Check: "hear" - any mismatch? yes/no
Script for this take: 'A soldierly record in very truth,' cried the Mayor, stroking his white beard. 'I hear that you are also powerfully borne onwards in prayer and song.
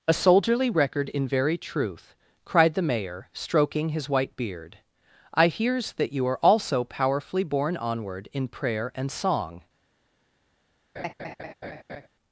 yes